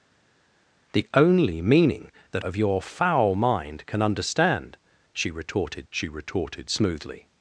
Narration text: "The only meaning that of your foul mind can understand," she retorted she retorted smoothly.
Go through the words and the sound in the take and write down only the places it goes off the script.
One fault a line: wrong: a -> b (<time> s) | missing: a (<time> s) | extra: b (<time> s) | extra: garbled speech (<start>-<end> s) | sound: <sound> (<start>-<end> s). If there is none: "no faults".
no faults